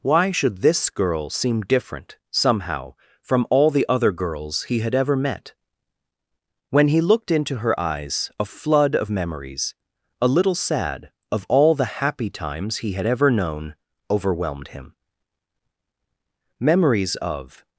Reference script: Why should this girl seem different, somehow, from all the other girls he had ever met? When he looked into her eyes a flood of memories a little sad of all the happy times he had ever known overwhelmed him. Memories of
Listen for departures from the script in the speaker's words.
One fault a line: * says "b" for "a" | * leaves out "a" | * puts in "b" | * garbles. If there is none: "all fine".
all fine